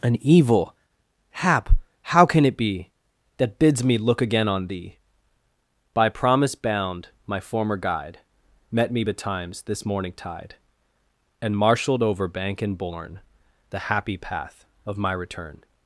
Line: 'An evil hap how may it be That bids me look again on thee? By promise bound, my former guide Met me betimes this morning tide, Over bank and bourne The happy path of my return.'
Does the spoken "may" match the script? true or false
false